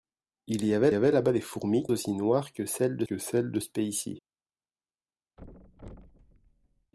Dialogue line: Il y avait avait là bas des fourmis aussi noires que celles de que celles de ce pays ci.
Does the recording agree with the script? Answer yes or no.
yes